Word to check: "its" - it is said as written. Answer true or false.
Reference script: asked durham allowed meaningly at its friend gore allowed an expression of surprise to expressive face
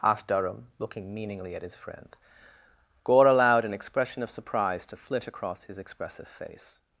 false